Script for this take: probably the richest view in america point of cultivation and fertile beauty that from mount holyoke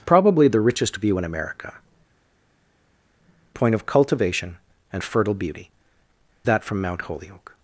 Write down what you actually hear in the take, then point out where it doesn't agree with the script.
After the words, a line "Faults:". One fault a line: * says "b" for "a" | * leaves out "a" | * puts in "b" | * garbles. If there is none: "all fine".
probably the richest view in america point of cultivation and fertile beauty that from mount holyoke
Faults:
all fine